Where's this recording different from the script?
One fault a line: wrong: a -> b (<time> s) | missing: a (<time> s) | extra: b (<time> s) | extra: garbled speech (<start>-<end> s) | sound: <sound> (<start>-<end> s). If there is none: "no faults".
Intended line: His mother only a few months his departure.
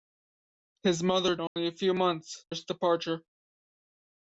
sound: dropout (1.5-1.6 s)